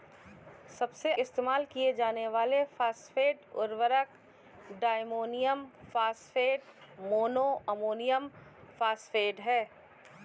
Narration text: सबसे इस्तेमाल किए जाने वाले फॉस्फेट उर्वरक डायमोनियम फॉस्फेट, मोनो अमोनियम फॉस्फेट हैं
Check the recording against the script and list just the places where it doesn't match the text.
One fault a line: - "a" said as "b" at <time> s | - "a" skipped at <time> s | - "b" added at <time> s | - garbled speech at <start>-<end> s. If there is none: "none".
none